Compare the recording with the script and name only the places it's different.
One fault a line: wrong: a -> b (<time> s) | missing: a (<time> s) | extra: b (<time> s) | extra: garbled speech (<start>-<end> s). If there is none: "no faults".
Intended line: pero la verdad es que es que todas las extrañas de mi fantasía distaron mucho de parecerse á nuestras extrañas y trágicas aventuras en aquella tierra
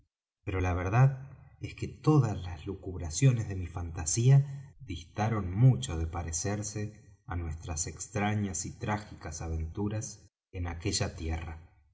missing: es que (1.9 s)
wrong: extrañas -> lucubraciones (2.7 s)